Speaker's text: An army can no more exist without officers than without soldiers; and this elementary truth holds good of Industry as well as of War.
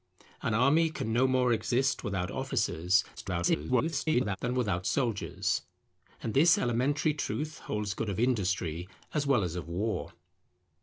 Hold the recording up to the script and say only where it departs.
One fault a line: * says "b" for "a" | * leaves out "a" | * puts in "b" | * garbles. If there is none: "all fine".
* garbles